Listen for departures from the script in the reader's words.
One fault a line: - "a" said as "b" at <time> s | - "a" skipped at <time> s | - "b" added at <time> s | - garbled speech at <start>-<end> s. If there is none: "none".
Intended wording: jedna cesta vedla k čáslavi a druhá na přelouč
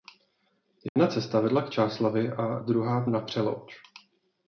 none